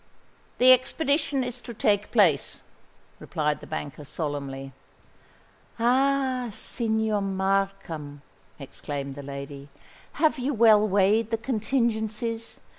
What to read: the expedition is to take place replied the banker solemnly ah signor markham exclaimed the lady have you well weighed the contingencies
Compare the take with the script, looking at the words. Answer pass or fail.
pass